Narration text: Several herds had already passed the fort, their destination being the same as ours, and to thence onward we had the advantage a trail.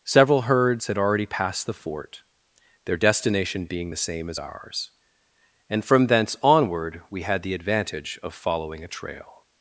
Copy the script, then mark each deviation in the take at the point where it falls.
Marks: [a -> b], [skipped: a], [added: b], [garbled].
Several herds had already passed the fort, their destination being the same as ours, and [to -> from] thence onward we had the advantage [added: of following] a trail.